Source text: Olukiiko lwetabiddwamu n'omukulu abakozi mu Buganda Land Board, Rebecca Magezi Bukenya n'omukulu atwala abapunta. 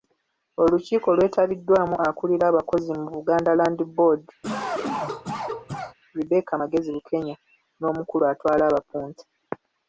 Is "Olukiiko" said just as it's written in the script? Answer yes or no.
yes